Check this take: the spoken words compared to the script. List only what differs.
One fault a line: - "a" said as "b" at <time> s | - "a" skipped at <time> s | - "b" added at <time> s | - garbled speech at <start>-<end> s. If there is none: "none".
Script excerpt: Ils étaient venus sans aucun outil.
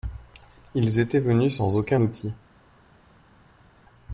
none